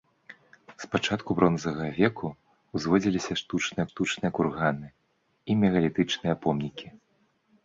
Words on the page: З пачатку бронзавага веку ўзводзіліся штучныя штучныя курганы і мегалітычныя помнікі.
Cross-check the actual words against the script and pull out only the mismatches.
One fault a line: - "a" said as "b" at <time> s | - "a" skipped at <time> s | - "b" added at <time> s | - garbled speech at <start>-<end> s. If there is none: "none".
none